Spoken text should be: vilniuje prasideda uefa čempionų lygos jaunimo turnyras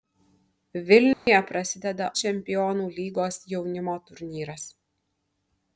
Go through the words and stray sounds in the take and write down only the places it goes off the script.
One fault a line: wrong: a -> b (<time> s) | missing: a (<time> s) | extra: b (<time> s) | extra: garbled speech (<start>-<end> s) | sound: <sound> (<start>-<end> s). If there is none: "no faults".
sound: dropout (1.1-1.3 s)
missing: uefa (2.1 s)